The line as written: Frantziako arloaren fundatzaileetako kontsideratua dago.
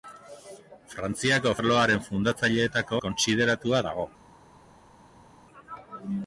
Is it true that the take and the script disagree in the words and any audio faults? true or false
false